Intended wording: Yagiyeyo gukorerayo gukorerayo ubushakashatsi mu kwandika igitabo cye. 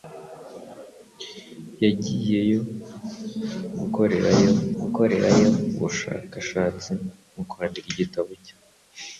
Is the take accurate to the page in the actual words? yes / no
yes